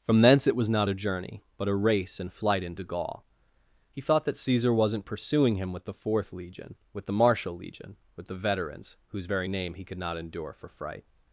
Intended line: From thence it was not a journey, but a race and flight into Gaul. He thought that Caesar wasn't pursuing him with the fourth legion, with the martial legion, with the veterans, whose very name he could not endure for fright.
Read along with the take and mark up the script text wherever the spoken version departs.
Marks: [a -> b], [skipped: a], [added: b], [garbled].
From thence it was not a journey, but a race and flight into Gaul. He thought that Caesar wasn't pursuing him with the fourth legion, with the martial legion, with the veterans, whose very name he could not endure for fright.